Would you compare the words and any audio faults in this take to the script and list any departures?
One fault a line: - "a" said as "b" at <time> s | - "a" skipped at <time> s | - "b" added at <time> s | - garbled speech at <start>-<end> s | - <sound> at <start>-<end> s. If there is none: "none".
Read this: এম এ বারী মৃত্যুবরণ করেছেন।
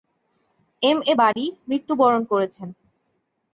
- dropout at 1.3-1.4 s